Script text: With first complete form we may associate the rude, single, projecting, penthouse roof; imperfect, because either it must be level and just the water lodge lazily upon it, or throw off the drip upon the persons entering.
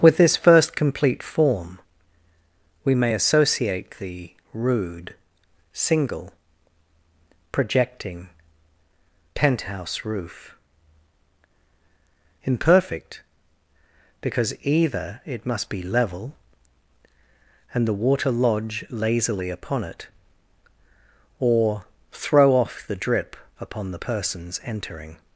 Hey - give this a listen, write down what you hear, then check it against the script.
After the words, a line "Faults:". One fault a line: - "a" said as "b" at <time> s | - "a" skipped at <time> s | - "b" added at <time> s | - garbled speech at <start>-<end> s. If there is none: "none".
With this first complete form we may associate the rude, single, projecting, penthouse roof; imperfect, because either it must be level and the water lodge lazily upon it, or throw off the drip upon the persons entering.
Faults:
- "this" added at 0.2 s
- "just" skipped at 17.8 s